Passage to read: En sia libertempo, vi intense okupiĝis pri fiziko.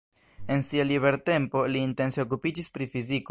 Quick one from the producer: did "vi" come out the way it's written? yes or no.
no